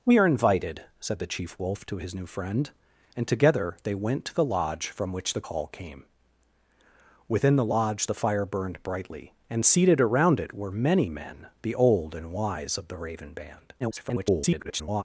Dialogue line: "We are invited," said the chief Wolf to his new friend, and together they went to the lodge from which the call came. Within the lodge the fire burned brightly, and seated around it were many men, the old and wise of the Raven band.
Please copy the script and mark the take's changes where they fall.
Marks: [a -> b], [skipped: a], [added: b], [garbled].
"We are invited," said the chief Wolf to his new friend, and together they went to the lodge from which the call came. Within the lodge the fire burned brightly, and seated around it were many men, the old and wise of the Raven band. [garbled]